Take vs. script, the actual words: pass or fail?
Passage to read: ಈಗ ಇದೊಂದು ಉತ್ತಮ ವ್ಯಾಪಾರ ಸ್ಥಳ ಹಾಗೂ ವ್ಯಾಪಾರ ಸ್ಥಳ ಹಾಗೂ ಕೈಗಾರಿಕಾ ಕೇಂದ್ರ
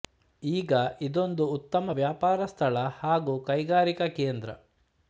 fail